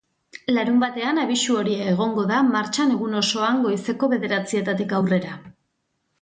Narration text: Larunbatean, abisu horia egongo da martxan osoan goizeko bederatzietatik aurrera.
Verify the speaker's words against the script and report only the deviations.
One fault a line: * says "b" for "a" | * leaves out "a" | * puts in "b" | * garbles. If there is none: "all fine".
* puts in "egun"